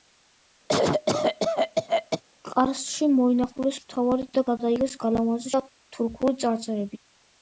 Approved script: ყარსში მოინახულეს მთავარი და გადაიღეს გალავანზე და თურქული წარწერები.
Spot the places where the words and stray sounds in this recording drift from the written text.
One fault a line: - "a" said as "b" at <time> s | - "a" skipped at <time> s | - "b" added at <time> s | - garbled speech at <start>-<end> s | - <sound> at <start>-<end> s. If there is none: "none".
- cough at 0.7-2.2 s